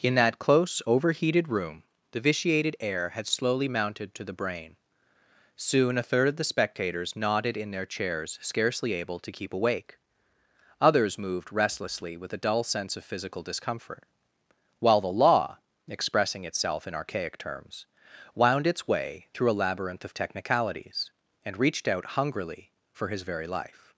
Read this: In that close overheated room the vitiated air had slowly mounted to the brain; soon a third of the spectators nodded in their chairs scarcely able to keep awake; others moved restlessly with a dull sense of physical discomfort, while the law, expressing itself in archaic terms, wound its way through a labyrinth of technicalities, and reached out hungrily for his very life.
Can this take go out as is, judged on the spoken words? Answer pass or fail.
pass